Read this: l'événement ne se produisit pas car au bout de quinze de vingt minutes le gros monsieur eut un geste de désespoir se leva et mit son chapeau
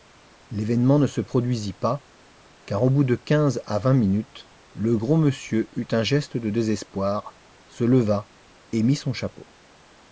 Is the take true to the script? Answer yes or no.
no